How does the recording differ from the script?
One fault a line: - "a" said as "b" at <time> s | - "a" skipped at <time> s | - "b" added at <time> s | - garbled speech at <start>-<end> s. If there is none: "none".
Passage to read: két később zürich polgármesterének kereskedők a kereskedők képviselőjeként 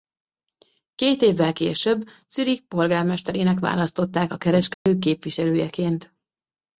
- "évvel" added at 1.2 s
- "kereskedők" said as "választották" at 3.6 s